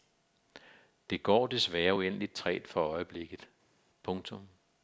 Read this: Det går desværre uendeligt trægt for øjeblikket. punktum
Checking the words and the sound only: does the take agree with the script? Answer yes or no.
yes